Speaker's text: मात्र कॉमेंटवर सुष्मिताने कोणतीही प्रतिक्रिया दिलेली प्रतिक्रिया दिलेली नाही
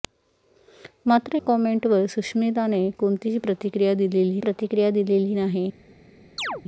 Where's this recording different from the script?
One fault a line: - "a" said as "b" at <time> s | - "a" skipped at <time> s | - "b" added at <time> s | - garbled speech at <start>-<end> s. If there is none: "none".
none